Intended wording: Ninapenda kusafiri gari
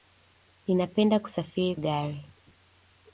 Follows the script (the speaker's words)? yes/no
yes